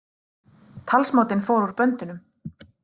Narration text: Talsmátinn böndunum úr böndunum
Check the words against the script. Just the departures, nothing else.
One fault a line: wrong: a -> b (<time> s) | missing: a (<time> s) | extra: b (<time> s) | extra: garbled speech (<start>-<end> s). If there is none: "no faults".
wrong: böndunum -> fór (1.5 s)